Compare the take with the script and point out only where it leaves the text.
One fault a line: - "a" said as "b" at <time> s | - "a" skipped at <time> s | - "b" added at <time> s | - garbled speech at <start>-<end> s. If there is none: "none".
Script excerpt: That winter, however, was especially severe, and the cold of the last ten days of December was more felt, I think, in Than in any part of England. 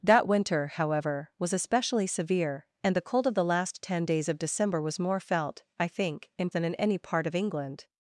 none